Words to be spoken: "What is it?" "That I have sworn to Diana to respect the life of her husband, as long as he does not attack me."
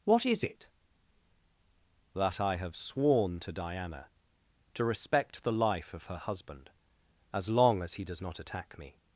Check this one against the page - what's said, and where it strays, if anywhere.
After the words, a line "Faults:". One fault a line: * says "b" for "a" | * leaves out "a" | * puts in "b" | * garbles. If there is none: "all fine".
"What is it?" "That I have sworn to Diana to respect the life of her husband, as long as he does not attack me."
Faults:
all fine